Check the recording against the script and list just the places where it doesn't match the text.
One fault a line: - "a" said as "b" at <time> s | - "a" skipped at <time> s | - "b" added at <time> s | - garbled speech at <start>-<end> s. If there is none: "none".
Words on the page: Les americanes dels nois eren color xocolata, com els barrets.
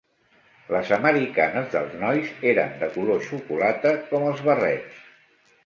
- "de" added at 2.8 s